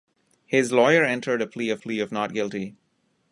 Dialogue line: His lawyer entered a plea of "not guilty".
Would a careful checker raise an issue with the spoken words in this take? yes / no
yes